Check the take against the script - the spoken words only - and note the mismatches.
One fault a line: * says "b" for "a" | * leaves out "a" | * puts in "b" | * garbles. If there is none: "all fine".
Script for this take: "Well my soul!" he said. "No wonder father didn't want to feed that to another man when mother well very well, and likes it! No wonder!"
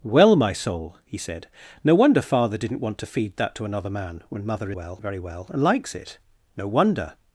all fine